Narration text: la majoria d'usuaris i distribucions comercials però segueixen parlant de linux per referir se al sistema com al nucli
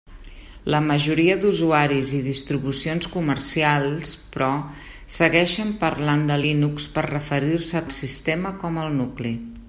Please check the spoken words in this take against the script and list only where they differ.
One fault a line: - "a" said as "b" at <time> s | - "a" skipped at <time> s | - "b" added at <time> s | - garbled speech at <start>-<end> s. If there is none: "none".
none